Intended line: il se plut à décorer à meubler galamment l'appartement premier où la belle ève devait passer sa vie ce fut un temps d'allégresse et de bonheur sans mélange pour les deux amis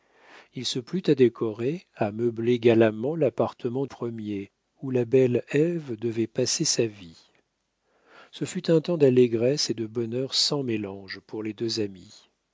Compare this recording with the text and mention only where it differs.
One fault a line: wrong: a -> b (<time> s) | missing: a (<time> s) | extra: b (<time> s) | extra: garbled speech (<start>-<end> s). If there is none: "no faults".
no faults